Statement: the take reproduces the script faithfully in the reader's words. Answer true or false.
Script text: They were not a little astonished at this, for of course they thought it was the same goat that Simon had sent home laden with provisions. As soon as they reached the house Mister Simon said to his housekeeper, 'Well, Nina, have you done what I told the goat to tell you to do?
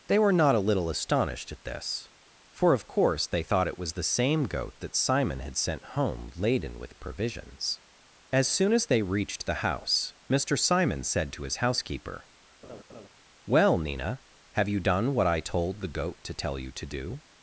true